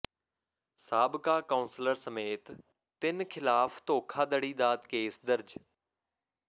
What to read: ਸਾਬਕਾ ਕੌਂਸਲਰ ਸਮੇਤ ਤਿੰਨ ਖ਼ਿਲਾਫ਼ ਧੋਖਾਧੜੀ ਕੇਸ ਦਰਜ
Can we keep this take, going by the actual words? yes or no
no